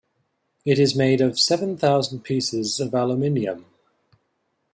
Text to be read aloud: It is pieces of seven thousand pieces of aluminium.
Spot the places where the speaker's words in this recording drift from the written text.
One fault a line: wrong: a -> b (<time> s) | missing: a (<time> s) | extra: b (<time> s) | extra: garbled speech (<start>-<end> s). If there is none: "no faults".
wrong: pieces -> made (0.9 s)